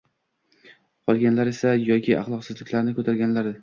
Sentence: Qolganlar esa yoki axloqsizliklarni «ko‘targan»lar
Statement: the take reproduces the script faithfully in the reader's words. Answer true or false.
true